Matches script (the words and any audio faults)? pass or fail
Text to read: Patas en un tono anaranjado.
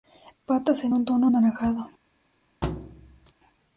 fail